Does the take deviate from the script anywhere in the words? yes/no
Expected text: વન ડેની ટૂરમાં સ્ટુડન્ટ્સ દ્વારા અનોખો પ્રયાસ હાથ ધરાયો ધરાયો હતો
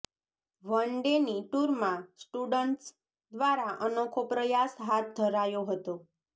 yes